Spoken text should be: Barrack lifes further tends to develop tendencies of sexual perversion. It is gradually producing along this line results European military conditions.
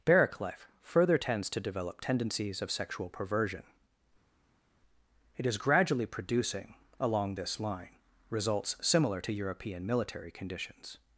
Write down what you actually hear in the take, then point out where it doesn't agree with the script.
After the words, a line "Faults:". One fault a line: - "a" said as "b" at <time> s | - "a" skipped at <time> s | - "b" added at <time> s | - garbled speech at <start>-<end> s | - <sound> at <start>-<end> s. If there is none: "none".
Barrack life further tends to develop tendencies of sexual perversion. It is gradually producing along this line results similar to European military conditions.
Faults:
- "lifes" said as "life" at 0.4 s
- "similar to" added at 8.8 s